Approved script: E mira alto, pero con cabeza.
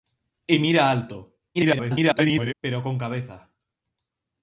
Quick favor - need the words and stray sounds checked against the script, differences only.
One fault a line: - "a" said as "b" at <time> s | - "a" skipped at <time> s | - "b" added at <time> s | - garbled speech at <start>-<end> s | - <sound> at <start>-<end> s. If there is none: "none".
- garbled speech at 1.5-2.5 s